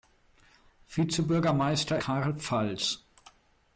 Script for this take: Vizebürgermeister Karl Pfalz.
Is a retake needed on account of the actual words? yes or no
no